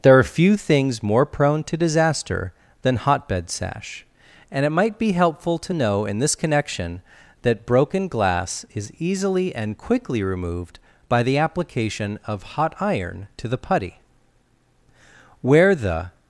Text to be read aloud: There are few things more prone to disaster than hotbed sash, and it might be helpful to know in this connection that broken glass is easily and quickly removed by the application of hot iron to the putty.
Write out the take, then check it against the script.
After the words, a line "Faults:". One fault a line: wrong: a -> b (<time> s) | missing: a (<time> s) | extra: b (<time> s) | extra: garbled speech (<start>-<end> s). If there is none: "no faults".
There are few things more prone to disaster than hotbed sash, and it might be helpful to know in this connection that broken glass is easily and quickly removed by the application of hot iron to the putty. Where the
Faults:
extra: Where the (15.4 s)